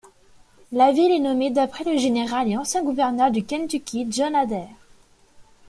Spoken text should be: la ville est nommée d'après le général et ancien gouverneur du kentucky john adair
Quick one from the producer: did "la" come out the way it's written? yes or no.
yes